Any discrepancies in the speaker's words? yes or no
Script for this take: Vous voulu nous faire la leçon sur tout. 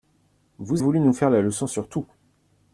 no